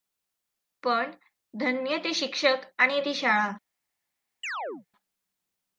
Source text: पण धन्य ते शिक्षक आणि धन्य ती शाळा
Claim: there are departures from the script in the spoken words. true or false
true